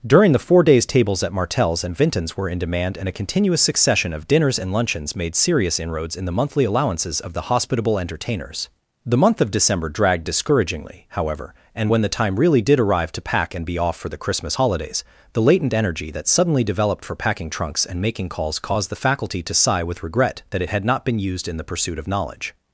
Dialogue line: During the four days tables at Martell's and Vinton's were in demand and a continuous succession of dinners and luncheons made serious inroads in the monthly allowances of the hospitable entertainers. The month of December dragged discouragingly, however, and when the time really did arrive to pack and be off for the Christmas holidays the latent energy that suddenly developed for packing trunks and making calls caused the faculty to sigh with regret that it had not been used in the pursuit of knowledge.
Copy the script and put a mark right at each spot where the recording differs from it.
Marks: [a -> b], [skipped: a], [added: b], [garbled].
During the four days tables at Martell's and Vinton's were in demand and a continuous succession of dinners and luncheons made serious inroads in the monthly allowances of the hospitable entertainers. The month of December dragged discouragingly, however, and when the time really did arrive to pack and be off for the Christmas holidays the latent energy that suddenly developed for packing trunks and making calls caused the faculty to sigh with regret that it had not been used in the pursuit of knowledge.